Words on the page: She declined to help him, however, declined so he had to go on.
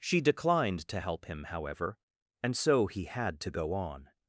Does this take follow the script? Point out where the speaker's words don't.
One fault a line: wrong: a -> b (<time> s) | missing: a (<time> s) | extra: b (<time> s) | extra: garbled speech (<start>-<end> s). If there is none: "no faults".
wrong: declined -> and (2.4 s)